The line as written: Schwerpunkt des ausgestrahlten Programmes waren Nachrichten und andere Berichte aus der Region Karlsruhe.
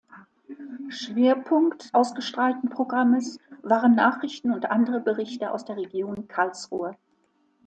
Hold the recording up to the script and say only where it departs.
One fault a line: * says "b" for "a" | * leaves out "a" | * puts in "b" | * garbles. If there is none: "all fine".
* leaves out "des"